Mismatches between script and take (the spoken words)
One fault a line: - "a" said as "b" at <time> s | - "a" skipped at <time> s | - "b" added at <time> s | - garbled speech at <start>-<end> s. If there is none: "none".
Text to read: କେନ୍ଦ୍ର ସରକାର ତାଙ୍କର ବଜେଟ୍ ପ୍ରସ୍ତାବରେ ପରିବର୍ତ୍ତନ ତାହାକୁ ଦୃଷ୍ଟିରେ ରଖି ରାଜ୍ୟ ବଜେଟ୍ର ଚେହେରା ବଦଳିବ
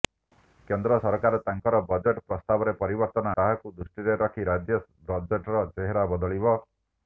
none